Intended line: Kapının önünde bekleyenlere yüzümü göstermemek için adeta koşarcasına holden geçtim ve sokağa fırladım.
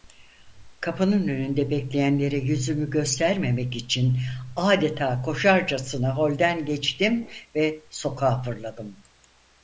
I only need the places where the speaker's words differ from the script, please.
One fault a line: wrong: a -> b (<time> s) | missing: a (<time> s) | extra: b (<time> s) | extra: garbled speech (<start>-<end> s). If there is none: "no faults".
no faults